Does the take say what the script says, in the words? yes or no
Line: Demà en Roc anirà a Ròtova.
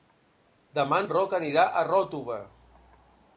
yes